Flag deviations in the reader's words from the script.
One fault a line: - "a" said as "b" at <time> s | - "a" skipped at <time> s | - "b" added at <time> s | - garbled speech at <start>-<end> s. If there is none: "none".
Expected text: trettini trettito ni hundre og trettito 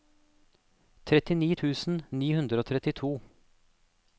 - "trettito" said as "tusen" at 1.6 s